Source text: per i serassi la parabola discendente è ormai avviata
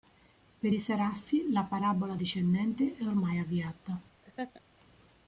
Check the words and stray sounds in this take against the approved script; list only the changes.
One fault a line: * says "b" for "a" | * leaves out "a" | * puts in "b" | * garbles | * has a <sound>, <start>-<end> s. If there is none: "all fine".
* has a laugh, 4.2-4.6 s